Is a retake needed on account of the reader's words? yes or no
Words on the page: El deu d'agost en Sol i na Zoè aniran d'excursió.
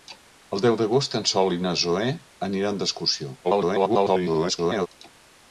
yes